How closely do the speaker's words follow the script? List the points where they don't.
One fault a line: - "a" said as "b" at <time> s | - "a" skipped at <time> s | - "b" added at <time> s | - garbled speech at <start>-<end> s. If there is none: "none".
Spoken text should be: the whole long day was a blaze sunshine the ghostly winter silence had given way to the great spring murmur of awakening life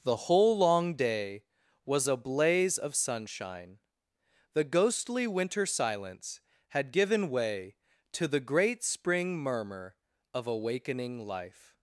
- "of" added at 2.8 s